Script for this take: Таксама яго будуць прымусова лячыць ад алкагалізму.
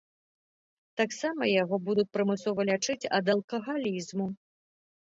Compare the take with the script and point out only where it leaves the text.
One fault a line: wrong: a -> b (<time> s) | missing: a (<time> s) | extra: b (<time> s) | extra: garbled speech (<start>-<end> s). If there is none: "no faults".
no faults